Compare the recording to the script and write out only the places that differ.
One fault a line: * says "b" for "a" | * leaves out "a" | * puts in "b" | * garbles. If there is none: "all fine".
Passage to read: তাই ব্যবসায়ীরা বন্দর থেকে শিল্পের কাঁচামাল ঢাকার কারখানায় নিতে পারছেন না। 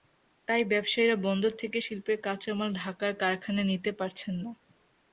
all fine